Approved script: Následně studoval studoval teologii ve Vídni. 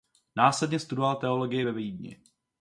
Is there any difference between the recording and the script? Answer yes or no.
yes